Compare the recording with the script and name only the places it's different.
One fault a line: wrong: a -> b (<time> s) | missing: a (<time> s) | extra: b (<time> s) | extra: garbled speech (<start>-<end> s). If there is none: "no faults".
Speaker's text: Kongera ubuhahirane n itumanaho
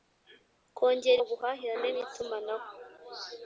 no faults